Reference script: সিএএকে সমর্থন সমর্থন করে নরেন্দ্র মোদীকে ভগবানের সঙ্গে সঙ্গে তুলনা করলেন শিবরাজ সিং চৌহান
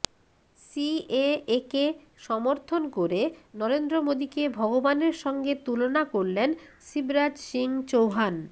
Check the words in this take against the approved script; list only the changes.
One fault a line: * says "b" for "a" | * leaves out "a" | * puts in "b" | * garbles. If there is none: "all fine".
* leaves out "সমর্থন"
* leaves out "সঙ্গে"